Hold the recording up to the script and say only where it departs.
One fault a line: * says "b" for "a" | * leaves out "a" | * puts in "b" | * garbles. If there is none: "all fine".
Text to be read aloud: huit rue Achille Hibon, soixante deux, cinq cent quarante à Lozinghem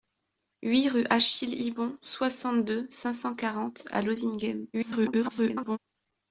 * garbles